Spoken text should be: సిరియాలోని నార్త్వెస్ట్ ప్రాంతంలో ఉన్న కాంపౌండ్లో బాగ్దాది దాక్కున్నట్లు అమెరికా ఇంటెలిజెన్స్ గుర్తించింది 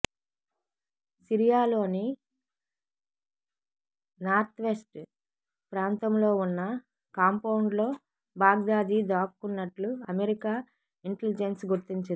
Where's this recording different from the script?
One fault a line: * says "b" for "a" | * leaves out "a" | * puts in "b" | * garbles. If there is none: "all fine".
all fine